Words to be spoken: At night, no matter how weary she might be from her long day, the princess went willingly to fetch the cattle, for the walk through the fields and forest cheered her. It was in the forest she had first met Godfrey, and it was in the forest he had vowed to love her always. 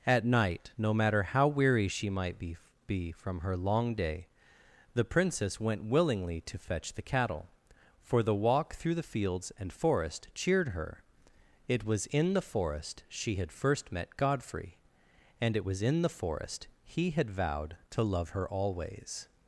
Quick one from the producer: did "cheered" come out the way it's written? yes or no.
yes